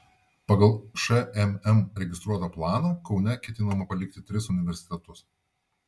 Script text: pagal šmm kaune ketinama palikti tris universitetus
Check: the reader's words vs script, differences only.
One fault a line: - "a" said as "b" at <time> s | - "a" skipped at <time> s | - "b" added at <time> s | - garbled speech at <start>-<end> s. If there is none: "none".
- "registruotą planą" added at 2.0 s